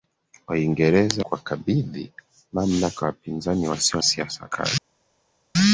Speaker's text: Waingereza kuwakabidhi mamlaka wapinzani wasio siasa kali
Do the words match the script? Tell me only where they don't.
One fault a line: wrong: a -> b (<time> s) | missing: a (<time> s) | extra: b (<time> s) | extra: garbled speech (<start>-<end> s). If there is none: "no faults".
no faults